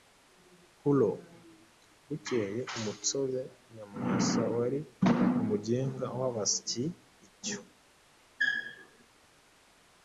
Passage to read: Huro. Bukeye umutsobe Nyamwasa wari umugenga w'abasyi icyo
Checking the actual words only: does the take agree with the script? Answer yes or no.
yes